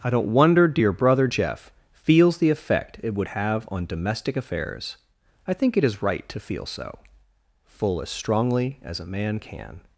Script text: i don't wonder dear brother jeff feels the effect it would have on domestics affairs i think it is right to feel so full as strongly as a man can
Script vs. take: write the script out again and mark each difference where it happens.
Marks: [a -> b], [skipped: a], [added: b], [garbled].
i don't wonder dear brother jeff feels the effect it would have on [domestics -> domestic] affairs i think it is right to feel so full as strongly as a man can